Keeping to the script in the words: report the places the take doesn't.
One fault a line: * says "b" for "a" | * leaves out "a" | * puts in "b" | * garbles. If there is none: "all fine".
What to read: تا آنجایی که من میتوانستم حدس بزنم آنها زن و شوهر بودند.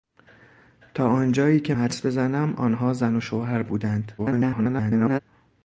* leaves out "من میتوانستم"
* garbles